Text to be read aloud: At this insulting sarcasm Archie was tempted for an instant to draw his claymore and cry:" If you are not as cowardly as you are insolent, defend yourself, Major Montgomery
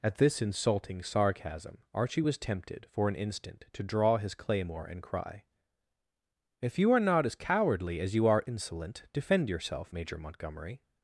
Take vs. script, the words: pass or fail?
pass